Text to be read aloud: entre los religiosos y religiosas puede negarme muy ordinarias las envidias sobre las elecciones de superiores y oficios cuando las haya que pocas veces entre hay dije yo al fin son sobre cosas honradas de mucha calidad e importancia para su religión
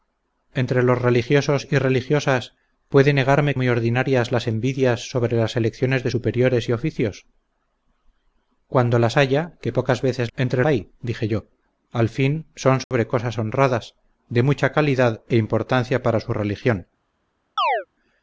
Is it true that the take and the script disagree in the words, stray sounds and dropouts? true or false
true